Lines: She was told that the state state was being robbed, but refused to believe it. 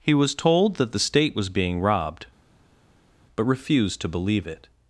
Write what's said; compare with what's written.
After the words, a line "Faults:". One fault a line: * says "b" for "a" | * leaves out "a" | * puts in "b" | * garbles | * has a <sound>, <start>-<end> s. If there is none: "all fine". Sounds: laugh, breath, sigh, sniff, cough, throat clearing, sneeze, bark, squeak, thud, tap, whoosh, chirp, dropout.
He was told that the state was being robbed, but refused to believe it.
Faults:
* says "He" for "She"
* leaves out "state"